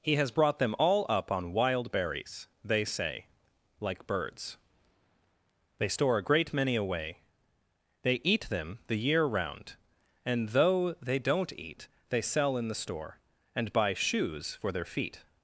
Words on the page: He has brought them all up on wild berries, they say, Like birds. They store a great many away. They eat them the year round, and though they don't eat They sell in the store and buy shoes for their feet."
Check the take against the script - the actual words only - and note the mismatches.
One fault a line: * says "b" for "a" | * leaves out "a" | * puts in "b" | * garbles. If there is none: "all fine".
all fine